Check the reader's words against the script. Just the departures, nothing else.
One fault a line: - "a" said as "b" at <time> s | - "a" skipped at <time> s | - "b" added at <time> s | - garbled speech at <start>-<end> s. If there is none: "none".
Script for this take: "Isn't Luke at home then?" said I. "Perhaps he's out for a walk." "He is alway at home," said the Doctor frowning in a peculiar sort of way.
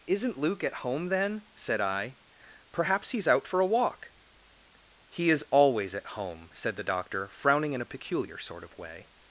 - "alway" said as "always" at 5.5 s